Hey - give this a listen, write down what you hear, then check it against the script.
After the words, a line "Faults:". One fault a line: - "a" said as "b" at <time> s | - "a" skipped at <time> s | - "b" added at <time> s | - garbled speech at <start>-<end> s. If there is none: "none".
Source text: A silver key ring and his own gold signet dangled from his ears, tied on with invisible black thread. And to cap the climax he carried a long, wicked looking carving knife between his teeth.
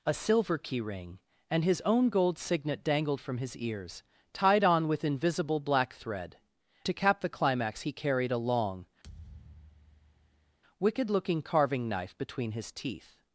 A silver key ring and his own gold signet dangled from his ears, tied on with invisible black thread. To cap the climax he carried a long, wicked looking carving knife between his teeth.
Faults:
- "And" skipped at 6.4 s